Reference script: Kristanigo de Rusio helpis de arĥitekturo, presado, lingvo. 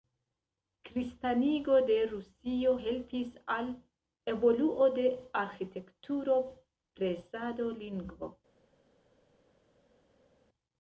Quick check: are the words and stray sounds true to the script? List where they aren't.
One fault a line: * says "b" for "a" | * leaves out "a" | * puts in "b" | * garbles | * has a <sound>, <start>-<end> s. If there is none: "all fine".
* puts in "al evoluo"